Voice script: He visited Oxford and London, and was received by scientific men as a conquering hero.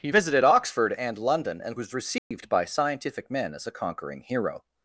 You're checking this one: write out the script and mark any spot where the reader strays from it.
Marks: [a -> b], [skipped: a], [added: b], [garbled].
He visited Oxford and London, and was received by scientific men as a conquering hero.